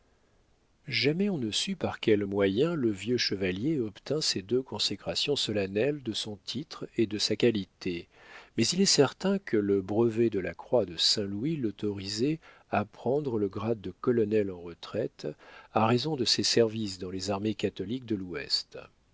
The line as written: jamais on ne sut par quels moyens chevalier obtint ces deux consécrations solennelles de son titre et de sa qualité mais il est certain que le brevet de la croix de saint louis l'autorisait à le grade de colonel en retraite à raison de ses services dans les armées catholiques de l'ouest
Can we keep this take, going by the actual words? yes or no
no